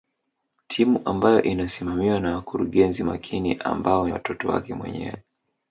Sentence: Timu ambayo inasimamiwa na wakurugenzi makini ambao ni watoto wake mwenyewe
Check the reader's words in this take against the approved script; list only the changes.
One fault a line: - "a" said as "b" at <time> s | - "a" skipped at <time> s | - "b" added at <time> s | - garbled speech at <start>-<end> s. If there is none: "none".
- "ni" skipped at 4.1 s